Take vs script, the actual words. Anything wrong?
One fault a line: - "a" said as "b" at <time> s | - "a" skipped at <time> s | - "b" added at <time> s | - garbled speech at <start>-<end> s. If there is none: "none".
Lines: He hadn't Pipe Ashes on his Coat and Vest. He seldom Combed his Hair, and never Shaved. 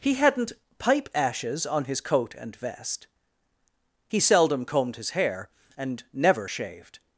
none